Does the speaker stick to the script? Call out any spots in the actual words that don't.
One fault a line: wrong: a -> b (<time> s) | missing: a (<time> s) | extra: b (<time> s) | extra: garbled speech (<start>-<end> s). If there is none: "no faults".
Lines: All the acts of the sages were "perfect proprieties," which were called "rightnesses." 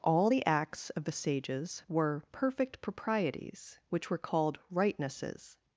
no faults